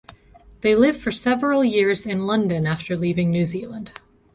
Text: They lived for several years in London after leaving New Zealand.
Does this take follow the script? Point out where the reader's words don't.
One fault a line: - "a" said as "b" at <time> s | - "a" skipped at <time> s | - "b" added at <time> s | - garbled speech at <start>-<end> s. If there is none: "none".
none